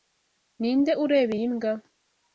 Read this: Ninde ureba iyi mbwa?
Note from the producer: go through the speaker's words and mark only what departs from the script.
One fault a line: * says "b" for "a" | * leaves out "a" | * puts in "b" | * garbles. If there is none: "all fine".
all fine